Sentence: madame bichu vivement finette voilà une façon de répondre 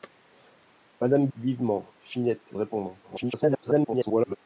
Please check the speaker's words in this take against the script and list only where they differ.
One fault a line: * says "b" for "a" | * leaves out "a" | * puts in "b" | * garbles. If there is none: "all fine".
* leaves out "bichu"
* leaves out "voilà une façon"
* garbles